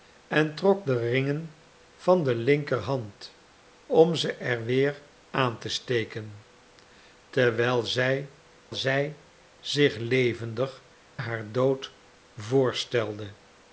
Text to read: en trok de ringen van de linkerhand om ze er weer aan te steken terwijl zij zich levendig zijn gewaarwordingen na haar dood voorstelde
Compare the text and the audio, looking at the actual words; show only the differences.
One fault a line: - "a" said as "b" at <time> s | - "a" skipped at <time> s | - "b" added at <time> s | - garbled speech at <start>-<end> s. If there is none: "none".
- "zij" added at 8.7 s
- "zijn gewaarwordingen na" skipped at 10.8 s